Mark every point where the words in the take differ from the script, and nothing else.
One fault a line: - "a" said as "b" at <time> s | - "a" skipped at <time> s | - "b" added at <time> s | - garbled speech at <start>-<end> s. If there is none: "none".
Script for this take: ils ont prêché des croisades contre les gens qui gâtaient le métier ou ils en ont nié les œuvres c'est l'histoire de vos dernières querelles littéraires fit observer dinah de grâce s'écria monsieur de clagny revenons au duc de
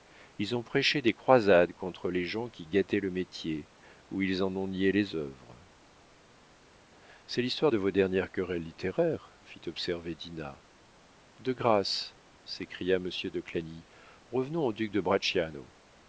none